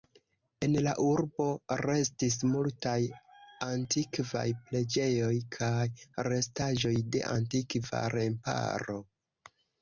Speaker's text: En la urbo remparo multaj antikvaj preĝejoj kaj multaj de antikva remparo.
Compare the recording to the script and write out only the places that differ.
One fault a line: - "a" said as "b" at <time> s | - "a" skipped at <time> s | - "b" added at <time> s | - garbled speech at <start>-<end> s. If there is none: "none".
- "remparo" said as "restis" at 1.8 s
- "multaj" said as "restaĵoj" at 6.3 s